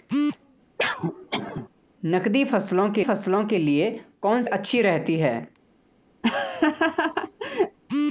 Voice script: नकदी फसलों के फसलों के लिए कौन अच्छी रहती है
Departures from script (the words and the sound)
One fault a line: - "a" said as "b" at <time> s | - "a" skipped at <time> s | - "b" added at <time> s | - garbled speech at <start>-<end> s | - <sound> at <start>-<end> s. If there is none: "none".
- cough at 0.8-1.7 s
- laugh at 6.2-7.8 s